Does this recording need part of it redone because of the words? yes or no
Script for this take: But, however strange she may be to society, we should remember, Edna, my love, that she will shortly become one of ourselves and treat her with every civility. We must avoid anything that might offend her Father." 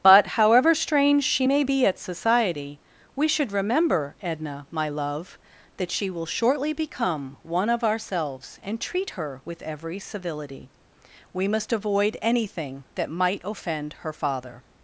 yes